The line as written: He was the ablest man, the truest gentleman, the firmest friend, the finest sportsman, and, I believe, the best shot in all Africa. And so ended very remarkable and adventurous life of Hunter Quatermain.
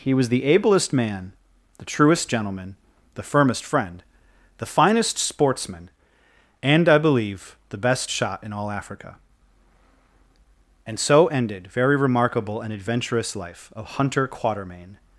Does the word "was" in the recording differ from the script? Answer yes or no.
no